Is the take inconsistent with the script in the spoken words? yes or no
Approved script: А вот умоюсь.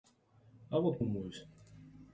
no